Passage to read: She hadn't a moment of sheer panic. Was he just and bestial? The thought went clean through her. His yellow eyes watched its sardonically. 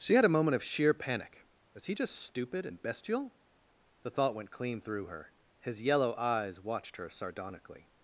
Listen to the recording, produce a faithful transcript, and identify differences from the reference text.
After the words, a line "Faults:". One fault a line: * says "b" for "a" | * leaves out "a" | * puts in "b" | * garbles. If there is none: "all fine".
She had a moment of sheer panic. Was he just stupid and bestial? The thought went clean through her. His yellow eyes watched her sardonically.
Faults:
* says "had" for "hadn't"
* puts in "stupid"
* says "her" for "its"